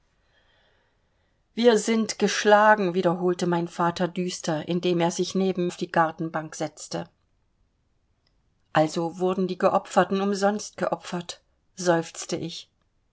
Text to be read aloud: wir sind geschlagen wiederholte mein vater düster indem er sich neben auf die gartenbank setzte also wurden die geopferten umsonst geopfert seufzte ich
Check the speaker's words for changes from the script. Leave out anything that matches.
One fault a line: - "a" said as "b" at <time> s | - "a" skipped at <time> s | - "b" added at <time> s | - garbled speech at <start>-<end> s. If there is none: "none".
none